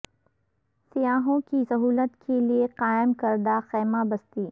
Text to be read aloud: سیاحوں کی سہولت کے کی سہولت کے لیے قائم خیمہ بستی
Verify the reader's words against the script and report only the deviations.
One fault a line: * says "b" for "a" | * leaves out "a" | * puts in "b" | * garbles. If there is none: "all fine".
* leaves out "کی سہولت کے"
* puts in "کردہ"